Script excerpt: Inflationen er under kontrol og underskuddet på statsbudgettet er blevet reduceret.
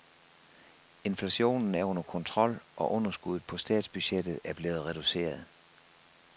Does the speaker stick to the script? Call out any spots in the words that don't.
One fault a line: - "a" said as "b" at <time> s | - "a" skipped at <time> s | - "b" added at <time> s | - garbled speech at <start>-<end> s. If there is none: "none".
none